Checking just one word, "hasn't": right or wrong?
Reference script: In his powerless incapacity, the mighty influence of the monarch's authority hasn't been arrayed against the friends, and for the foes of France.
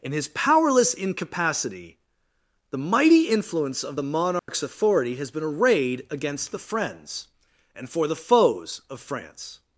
wrong